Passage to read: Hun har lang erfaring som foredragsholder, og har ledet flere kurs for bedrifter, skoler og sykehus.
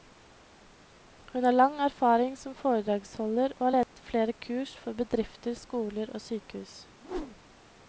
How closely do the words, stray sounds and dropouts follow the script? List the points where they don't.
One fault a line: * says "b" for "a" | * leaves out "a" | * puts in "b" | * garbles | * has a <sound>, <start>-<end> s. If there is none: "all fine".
* has a dropout, 3.8-3.9 s
* has a whoosh, 7.0-7.6 s